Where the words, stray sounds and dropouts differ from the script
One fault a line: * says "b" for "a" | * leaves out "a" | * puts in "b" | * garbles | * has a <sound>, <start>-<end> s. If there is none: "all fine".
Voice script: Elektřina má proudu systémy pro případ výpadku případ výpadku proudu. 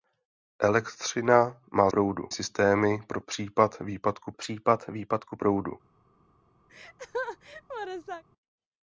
* has a laugh, 6.7-8.2 s